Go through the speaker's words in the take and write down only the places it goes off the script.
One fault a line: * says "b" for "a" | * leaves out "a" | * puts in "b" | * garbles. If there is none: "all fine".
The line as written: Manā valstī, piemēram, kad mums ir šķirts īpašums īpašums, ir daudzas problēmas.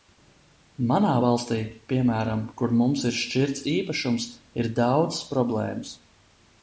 * says "kur" for "kad"
* leaves out "īpašums"